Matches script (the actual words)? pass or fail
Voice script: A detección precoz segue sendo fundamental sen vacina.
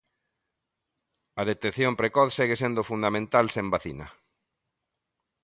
pass